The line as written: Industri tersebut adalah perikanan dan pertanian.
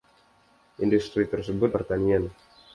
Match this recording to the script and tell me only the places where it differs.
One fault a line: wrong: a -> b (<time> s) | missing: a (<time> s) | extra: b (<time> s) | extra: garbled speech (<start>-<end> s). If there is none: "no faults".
missing: adalah perikanan dan (1.8 s)